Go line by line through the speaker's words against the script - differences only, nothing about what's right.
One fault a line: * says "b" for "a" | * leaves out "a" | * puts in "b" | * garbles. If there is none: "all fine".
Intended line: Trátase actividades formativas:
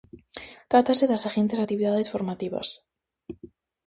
* puts in "das seguintes"